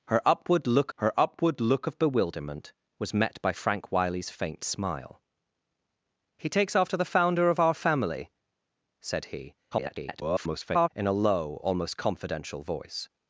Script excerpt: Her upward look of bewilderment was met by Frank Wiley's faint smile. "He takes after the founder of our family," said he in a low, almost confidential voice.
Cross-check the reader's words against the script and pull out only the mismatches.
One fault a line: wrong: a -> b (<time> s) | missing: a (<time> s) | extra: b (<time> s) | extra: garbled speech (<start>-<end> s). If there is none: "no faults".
extra: her upward look (1.0 s)
extra: garbled speech (9.7-10.9 s)